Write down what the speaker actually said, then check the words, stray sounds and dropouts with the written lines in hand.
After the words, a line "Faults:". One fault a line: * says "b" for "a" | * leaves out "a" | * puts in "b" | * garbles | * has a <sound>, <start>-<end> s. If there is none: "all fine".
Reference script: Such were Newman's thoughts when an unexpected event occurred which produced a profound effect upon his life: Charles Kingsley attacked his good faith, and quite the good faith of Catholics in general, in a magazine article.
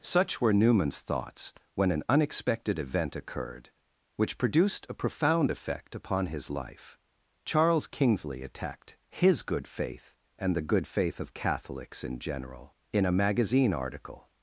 Such were Newman's thoughts when an unexpected event occurred which produced a profound effect upon his life: Charles Kingsley attacked his good faith, and the good faith of Catholics in general, in a magazine article.
Faults:
* leaves out "quite"